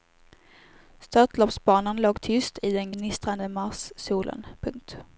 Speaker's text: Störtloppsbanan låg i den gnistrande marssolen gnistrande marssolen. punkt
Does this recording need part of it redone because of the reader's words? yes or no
yes